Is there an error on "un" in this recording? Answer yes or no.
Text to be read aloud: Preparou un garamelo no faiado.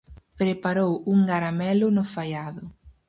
no